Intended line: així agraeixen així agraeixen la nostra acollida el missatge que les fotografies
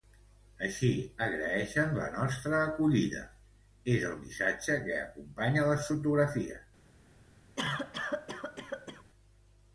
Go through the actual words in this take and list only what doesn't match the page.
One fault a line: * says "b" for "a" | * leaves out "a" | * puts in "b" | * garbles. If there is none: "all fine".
* leaves out "així agraeixen"
* puts in "és"
* puts in "acompanya"